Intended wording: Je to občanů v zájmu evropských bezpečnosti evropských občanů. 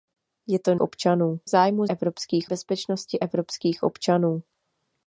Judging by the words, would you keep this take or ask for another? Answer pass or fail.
pass